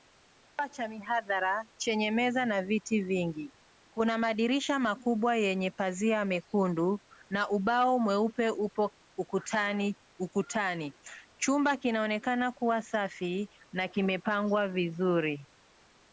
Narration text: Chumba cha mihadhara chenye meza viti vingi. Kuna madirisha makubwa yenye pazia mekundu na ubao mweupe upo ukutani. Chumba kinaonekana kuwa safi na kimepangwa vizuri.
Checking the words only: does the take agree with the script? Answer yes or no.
no